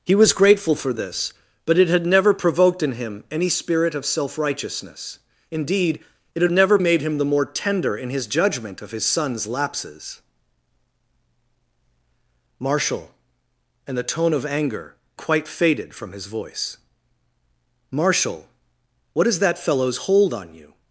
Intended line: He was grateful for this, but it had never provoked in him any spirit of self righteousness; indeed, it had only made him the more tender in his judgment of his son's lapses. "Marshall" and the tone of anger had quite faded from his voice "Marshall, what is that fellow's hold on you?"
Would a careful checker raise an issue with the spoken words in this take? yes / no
yes